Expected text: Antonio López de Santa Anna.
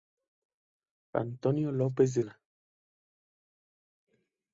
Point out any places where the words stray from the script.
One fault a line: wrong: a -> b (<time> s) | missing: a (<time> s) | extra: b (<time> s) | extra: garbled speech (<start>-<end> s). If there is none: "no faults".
missing: Santa (2.2 s)